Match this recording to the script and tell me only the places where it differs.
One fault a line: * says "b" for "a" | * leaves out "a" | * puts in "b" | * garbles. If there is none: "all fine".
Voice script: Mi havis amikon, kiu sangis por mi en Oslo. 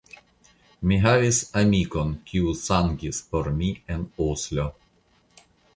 all fine